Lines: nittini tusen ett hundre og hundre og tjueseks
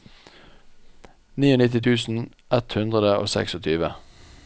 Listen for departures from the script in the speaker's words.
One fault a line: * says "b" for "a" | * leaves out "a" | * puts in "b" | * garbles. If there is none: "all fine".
* leaves out "hundre og"